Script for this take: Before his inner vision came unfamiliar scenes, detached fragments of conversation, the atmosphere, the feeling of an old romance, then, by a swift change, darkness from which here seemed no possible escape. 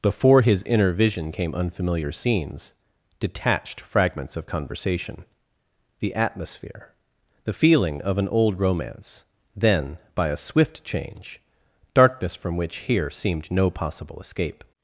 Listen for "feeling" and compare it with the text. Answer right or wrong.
right